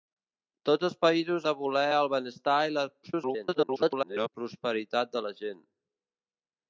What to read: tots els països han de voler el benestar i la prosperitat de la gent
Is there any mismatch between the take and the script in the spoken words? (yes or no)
yes